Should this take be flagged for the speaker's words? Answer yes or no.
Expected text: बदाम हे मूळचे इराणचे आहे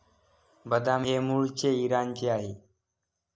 no